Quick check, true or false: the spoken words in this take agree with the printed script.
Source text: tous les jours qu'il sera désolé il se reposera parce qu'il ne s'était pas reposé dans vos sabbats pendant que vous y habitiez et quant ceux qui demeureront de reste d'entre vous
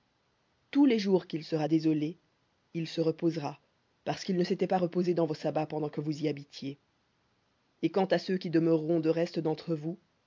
false